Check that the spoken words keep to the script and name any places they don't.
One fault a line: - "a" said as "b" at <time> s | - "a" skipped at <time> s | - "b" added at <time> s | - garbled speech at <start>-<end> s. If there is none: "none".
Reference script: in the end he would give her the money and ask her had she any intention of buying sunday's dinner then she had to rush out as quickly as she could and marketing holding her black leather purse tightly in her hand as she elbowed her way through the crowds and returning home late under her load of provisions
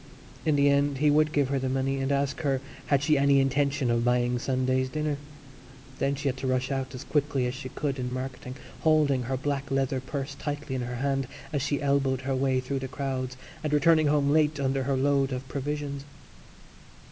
none